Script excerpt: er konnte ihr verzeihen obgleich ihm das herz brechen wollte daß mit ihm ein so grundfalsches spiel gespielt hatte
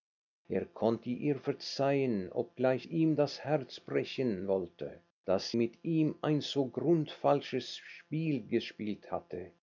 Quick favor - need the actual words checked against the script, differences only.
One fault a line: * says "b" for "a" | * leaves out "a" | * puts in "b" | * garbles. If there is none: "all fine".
all fine